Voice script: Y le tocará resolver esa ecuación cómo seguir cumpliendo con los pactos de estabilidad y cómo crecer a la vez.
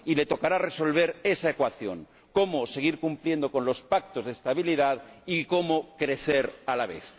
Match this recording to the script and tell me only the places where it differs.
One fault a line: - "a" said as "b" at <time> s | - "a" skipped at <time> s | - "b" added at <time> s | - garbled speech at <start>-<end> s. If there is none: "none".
none